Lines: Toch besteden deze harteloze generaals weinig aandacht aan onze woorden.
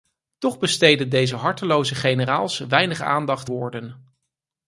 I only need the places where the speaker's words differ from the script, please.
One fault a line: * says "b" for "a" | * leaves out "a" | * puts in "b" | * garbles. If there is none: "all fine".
* leaves out "aan onze"